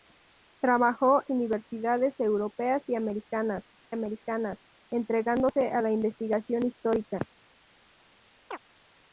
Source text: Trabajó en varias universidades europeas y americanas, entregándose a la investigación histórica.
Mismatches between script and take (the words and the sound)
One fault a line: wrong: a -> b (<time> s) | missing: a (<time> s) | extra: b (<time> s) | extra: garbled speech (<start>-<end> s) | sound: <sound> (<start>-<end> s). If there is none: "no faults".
missing: en varias (1.2 s)
extra: americanas (3.9 s)
sound: chirp (8.5-8.6 s)